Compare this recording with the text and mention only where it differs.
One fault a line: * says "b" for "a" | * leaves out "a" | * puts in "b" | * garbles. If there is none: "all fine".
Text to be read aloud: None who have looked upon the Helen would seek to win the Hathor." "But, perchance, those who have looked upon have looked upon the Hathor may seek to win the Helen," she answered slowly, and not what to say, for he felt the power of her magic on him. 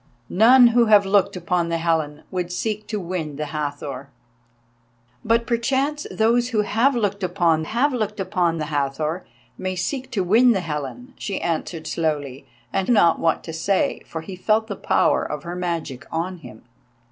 all fine